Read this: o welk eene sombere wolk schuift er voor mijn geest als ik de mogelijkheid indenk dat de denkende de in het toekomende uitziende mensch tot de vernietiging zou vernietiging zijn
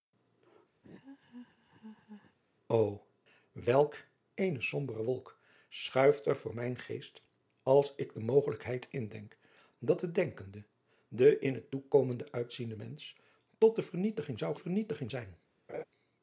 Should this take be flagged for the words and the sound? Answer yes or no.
yes